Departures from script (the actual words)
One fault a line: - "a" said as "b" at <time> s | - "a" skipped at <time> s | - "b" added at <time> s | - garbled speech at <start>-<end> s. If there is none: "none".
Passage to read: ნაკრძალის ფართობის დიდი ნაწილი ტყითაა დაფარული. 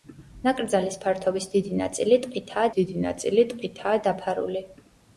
- "დიდი ნაწილი ტყითაა" added at 2.8 s